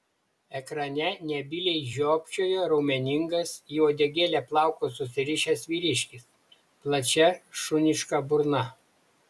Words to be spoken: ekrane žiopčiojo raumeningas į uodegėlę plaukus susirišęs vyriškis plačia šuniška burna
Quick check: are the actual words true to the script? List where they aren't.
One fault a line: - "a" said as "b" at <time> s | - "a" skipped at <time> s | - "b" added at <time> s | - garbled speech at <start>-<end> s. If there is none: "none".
- "nebyliai" added at 1.3 s